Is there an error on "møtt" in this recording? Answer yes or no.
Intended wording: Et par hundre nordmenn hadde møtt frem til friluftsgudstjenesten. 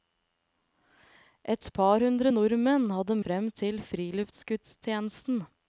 yes